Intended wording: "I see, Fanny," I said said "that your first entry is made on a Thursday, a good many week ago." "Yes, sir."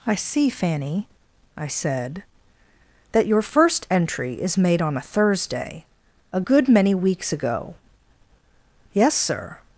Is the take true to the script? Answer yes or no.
no